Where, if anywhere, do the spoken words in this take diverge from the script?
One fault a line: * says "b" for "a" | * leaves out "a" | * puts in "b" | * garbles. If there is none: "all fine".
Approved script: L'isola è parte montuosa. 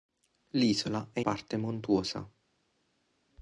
all fine